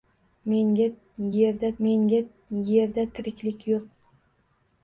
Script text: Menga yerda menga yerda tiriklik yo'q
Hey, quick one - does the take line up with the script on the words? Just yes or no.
yes